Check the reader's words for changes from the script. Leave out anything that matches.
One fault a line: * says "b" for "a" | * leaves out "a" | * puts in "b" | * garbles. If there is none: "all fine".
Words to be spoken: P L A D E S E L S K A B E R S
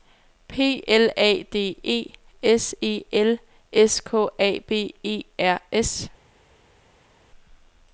all fine